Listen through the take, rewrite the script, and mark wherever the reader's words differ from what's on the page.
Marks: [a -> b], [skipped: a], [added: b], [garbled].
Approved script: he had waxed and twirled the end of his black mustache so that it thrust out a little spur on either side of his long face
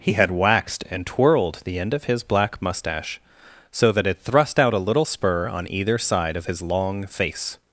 he had waxed and twirled the end of his black mustache so that it thrust out a little spur on either side of his long face